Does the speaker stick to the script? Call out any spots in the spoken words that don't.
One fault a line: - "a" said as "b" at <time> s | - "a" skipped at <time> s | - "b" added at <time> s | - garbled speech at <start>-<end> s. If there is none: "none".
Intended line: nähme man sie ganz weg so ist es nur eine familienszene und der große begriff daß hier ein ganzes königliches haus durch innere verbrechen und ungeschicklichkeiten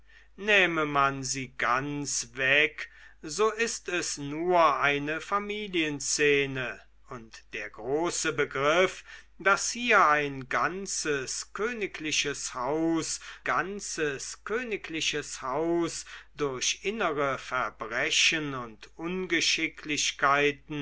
- "ganzes königliches haus" added at 13.4 s